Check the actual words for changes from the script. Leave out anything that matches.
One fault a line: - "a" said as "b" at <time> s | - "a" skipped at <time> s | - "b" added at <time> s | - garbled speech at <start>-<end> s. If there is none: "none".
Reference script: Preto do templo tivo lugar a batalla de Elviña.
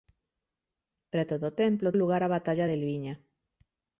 - "tivo" skipped at 1.9 s